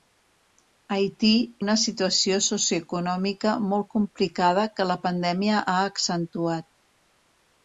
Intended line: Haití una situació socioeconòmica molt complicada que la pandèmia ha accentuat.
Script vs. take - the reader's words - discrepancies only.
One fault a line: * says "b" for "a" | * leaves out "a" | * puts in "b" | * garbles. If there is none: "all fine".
all fine